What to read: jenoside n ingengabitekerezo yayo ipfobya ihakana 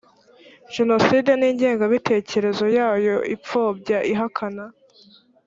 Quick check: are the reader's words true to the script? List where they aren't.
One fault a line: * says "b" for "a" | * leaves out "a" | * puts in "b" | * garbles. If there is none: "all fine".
all fine